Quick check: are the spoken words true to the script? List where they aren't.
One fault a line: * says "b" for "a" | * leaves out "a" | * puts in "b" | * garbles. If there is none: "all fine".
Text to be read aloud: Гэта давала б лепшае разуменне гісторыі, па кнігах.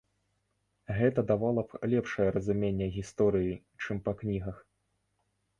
* puts in "чым"